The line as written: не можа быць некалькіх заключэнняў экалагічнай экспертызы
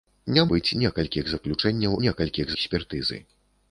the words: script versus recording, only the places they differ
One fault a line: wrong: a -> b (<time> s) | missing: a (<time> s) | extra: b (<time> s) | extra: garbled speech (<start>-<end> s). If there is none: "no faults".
missing: можа (0.5 s)
wrong: экалагічнай -> некалькіх (2.0 s)